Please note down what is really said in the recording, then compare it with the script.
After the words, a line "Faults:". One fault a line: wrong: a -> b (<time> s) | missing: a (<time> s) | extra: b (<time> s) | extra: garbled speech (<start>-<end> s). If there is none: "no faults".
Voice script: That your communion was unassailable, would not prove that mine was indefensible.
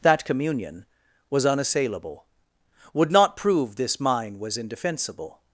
That communion was unassailable, would not prove this mine was indefensible.
Faults:
missing: your (0.2 s)
wrong: that -> this (3.8 s)